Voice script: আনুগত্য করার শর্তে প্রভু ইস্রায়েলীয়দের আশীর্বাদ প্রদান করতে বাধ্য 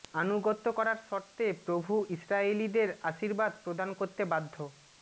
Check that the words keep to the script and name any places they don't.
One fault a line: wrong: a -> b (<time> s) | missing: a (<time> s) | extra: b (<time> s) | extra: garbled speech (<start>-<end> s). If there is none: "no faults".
no faults